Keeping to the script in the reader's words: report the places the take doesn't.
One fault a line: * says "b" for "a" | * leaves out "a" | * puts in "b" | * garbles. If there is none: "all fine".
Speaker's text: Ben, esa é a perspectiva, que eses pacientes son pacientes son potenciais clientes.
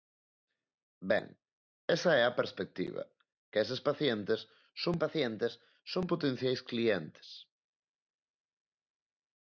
all fine